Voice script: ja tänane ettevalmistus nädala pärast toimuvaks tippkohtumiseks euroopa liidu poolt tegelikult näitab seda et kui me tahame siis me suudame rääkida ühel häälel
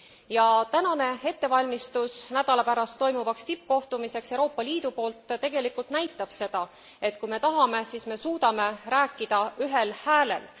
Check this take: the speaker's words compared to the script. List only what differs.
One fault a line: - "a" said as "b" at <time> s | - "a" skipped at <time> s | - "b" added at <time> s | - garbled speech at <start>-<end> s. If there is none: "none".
none